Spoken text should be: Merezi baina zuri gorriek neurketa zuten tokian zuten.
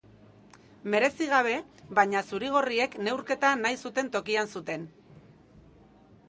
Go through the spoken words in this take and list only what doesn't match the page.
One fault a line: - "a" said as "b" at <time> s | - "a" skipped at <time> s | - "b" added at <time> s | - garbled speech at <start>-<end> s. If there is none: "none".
- "gabe" added at 1.3 s
- "nahi" added at 3.6 s